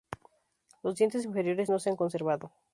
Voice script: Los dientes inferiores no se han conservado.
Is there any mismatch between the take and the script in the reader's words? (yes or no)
no